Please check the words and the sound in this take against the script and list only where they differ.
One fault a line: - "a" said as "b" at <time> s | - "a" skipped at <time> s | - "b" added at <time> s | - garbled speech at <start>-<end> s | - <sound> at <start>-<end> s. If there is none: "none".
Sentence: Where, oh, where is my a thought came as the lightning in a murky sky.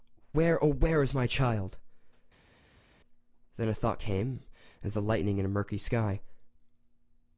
- "child Then" added at 1.3 s